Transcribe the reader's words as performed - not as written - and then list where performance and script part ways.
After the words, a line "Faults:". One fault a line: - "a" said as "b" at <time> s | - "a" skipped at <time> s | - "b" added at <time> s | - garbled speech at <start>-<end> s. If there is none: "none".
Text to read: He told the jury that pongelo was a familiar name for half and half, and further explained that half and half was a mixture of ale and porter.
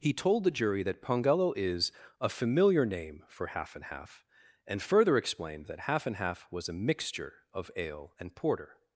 He told the jury that pongelo is a familiar name for half and half, and further explained that half and half was a mixture of ale and porter.
Faults:
- "was" said as "is" at 1.6 s